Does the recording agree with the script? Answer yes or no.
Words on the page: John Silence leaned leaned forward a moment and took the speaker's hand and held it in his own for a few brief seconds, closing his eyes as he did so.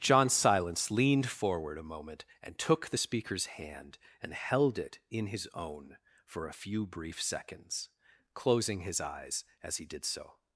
no